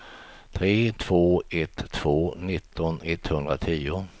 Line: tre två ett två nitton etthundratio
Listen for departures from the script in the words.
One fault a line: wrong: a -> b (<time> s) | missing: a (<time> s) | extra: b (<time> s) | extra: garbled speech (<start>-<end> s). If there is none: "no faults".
no faults